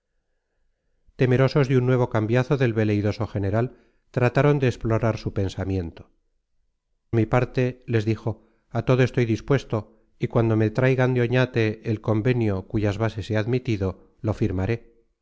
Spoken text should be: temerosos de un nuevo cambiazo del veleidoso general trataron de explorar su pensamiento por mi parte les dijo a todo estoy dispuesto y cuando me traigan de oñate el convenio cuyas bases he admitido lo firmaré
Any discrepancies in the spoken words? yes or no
yes